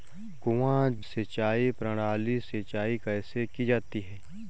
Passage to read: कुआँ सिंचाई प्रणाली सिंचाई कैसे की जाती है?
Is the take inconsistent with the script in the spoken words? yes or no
no